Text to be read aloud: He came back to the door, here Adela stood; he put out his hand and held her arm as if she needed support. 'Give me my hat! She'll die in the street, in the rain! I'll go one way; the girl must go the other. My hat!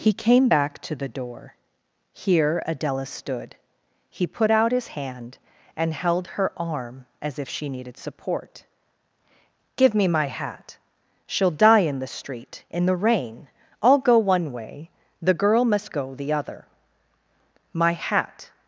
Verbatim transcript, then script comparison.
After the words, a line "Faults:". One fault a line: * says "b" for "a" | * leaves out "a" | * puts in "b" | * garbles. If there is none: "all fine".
He came back to the door, here Adela stood; he put out his hand and held her arm as if she needed support. 'Give me my hat! She'll die in the street, in the rain! I'll go one way; the girl must go the other. My hat!
Faults:
all fine